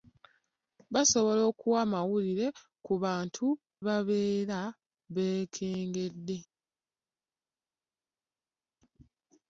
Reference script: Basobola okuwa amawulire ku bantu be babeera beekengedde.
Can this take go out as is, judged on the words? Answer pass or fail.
fail